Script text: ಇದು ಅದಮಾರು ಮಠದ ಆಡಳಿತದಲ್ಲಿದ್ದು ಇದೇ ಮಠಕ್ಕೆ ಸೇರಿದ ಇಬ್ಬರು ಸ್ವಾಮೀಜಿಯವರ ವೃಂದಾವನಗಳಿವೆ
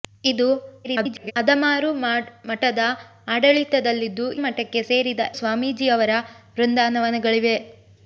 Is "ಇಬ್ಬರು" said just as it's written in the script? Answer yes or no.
no